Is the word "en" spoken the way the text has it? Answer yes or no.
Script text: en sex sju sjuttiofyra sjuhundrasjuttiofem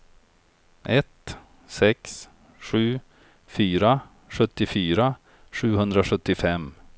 no